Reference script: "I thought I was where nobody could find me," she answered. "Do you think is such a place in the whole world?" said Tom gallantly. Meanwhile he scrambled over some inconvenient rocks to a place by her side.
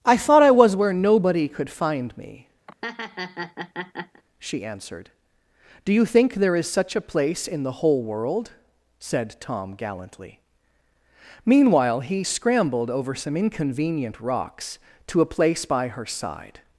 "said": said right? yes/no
yes